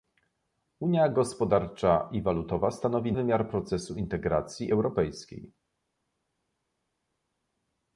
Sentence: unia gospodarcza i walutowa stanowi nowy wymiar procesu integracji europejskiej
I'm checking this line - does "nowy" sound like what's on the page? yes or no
no